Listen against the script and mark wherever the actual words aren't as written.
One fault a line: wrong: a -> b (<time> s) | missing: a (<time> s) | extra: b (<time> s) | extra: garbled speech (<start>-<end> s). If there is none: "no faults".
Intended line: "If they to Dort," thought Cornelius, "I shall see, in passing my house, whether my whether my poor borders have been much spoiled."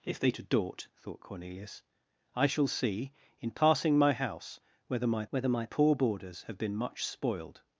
no faults